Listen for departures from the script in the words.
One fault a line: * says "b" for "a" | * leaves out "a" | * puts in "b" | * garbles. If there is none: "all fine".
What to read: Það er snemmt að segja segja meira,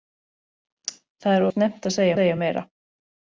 all fine